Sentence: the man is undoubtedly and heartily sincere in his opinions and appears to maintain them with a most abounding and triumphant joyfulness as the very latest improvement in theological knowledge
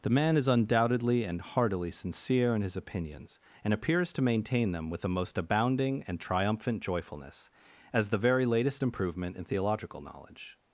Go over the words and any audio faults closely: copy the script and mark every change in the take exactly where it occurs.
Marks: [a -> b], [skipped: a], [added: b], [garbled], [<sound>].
the man is undoubtedly and heartily sincere in his opinions and appears to maintain them with [a -> the] most abounding and triumphant joyfulness as the very latest improvement in theological knowledge